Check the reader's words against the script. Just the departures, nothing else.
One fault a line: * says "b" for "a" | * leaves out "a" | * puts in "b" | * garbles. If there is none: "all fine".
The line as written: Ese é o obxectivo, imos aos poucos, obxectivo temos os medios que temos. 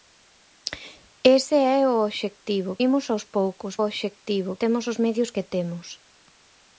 all fine